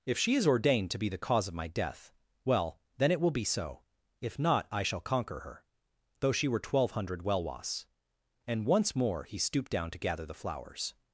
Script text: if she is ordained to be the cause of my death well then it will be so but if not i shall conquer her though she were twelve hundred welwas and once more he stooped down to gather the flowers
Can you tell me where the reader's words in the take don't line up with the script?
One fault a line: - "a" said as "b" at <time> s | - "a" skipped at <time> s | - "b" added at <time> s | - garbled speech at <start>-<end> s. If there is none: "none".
- "but" skipped at 3.8 s